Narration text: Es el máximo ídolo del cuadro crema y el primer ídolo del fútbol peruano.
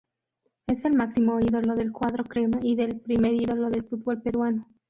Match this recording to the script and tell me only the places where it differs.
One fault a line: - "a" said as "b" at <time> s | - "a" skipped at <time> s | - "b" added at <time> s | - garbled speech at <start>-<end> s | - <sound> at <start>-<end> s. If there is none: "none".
none